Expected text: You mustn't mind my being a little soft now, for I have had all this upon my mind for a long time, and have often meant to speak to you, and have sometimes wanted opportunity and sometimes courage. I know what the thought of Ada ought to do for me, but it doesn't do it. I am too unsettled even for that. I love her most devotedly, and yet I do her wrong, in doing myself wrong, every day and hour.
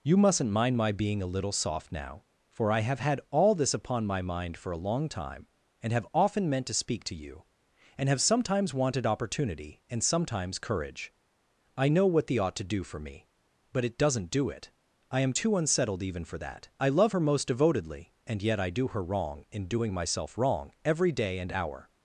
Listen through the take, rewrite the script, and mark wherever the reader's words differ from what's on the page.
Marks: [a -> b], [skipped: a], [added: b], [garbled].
You mustn't mind my being a little soft now, for I have had all this upon my mind for a long time, and have often meant to speak to you, and have sometimes wanted opportunity and sometimes courage. I know what the [skipped: thought of Ada] ought to do for me, but it doesn't do it. I am too unsettled even for that. I love her most devotedly, and yet I do her wrong, in doing myself wrong, every day and hour.